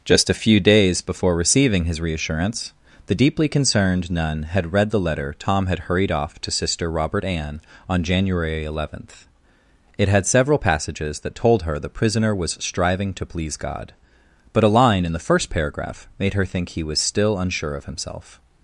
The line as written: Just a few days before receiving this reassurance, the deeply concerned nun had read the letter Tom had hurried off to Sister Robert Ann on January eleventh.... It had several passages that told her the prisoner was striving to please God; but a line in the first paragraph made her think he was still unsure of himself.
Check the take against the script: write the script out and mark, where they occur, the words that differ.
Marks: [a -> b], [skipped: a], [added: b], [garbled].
Just a few days before receiving [this -> his] reassurance, the deeply concerned nun had read the letter Tom had hurried off to Sister Robert Ann on January eleventh.... It had several passages that told her the prisoner was striving to please God; but a line in the first paragraph made her think he was still unsure of himself.